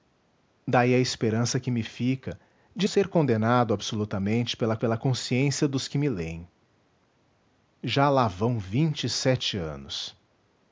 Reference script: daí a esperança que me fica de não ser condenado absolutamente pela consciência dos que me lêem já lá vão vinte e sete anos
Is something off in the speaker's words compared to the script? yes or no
yes